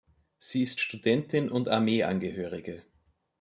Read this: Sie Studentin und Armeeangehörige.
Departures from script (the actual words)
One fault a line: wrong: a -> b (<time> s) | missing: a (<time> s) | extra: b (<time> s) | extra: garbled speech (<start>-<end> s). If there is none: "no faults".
extra: ist (0.6 s)